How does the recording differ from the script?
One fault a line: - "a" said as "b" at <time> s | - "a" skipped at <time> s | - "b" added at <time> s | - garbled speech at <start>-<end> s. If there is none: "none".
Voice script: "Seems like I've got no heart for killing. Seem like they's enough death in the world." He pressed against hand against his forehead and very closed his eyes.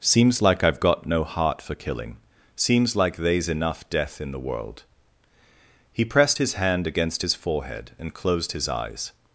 - "Seem" said as "Seems" at 2.5 s
- "against" said as "his" at 6.4 s
- "very" skipped at 8.1 s